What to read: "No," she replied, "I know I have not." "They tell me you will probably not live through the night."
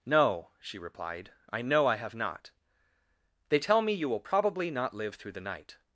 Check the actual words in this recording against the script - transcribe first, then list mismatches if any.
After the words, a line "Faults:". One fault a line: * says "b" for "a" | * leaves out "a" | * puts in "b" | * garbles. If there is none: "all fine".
"No," she replied, "I know I have not." "They tell me you will probably not live through the night."
Faults:
all fine